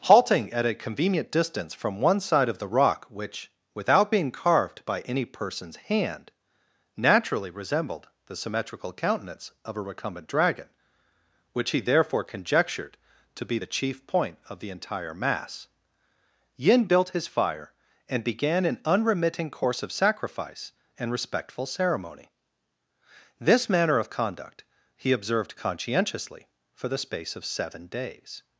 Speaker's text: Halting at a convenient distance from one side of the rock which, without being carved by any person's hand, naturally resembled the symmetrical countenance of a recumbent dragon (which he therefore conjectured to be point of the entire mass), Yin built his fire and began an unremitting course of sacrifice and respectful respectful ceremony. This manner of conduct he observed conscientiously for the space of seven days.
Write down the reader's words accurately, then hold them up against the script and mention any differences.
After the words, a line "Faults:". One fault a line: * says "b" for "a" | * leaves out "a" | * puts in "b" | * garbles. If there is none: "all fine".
Halting at a convenient distance from one side of the rock which, without being carved by any person's hand, naturally resembled the symmetrical countenance of a recumbent dragon (which he therefore conjectured to be the chief point of the entire mass), Yin built his fire and began an unremitting course of sacrifice and respectful ceremony. This manner of conduct he observed conscientiously for the space of seven days.
Faults:
* puts in "the chief"
* leaves out "respectful"